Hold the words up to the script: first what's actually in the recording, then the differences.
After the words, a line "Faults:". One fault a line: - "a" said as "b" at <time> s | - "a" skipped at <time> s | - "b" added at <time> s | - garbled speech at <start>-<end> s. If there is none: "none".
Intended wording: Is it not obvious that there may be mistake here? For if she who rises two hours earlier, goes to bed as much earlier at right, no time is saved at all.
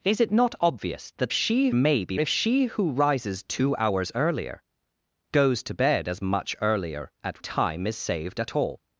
Is it not obvious that she may be if she who rises two hours earlier, goes to bed as much earlier at time is saved at all.
Faults:
- "there" said as "she" at 1.3 s
- "mistake here For" skipped at 2.2 s
- "right no" skipped at 7.4 s